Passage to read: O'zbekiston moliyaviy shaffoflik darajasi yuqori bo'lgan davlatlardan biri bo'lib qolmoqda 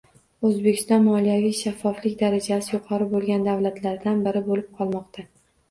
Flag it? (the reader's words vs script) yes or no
no